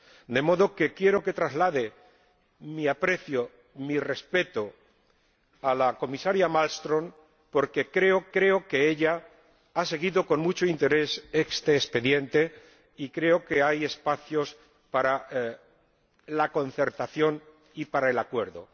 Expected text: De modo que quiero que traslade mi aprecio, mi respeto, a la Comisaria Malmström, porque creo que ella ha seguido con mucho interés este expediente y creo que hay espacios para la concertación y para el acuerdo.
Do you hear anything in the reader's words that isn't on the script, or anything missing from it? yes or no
yes